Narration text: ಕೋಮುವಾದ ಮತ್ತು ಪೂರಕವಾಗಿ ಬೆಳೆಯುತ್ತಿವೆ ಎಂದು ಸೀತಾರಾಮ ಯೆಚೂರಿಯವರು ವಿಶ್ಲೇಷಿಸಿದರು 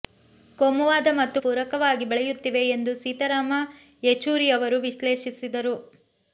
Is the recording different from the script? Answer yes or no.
no